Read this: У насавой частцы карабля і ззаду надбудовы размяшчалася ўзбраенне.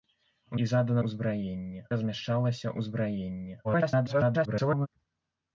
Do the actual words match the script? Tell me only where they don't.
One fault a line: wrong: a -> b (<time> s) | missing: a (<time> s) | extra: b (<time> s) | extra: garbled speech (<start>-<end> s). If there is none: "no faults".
missing: насавой частцы карабля (0.6 s)
wrong: надбудовы -> ўзбраенне (1.0 s)
extra: garbled speech (3.6-4.9 s)